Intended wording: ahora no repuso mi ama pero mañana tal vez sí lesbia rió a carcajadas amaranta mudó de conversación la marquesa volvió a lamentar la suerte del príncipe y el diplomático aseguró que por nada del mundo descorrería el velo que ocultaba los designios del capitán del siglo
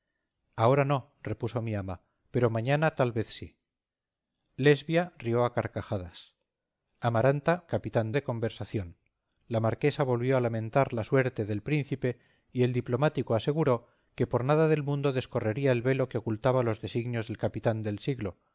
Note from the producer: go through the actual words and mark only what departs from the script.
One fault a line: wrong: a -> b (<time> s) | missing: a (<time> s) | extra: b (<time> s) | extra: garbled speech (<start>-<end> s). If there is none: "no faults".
wrong: mudó -> capitán (7.7 s)